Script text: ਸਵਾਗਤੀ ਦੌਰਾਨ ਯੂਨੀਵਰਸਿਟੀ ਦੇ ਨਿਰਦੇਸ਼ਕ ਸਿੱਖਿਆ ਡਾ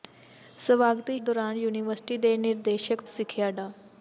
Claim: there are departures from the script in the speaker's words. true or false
false